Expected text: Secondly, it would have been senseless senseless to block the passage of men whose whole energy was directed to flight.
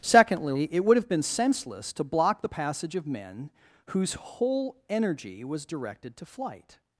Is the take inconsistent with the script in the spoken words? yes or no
yes